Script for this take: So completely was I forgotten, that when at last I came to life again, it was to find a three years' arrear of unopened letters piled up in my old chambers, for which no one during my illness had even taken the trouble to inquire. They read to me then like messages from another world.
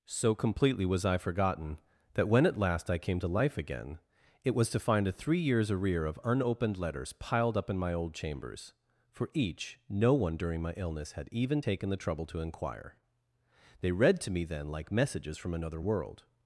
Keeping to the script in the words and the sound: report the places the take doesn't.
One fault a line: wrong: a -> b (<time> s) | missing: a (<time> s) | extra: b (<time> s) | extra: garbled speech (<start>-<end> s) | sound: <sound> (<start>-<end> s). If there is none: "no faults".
wrong: which -> each (9.3 s)